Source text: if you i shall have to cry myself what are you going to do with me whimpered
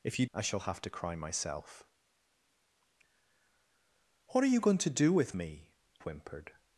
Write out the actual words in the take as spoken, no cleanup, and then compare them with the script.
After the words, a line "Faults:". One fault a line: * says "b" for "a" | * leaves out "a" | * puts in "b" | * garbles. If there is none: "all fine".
if you i shall have to cry myself what are you going to do with me whimpered
Faults:
all fine